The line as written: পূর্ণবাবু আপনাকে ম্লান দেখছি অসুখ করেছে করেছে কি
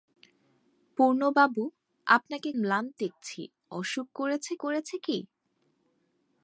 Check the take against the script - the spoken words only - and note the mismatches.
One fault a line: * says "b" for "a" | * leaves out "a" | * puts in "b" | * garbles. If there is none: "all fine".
all fine